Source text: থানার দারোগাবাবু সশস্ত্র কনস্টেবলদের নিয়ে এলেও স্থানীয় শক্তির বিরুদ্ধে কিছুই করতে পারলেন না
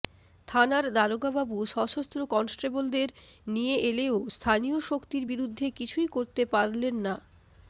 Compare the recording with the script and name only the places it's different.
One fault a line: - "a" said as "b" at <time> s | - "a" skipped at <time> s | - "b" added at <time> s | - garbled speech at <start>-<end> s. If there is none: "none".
none